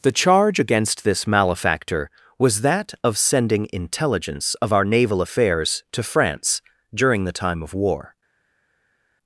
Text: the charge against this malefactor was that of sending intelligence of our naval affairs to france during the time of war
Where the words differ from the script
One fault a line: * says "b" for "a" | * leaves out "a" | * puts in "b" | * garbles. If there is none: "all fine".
all fine